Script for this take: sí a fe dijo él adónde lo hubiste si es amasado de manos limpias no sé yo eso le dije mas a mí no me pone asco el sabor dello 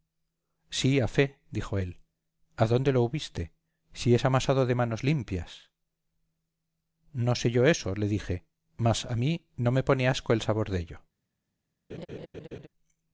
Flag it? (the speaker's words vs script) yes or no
no